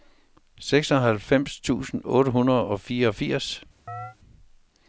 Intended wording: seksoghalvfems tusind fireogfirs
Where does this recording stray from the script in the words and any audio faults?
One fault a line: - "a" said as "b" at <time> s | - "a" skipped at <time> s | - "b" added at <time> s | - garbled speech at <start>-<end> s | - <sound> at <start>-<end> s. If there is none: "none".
- "otte hundrede og" added at 2.0 s
- chirp at 3.9-4.2 s